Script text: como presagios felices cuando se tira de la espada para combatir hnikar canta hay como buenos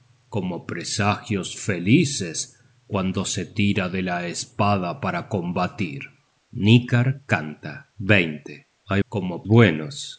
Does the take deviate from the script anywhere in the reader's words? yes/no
no